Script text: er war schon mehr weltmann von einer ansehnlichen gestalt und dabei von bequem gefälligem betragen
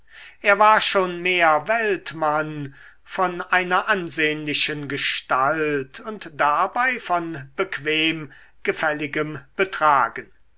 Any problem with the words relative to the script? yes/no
no